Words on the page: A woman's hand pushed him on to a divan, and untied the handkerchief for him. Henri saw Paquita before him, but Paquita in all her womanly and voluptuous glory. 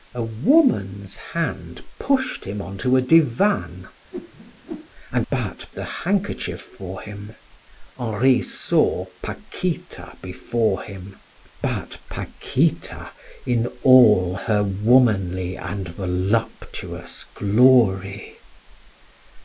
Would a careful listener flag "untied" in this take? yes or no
yes